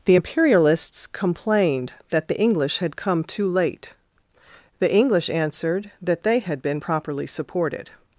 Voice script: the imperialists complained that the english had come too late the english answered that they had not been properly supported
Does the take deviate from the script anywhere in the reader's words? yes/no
yes